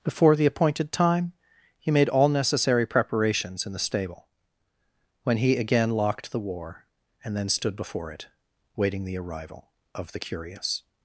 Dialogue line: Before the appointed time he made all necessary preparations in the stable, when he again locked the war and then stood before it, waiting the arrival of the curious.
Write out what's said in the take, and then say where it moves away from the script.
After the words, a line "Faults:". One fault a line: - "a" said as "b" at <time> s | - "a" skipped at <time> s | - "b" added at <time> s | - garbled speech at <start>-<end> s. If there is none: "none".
Before the appointed time he made all necessary preparations in the stable, when he again locked the war and then stood before it, waiting the arrival of the curious.
Faults:
none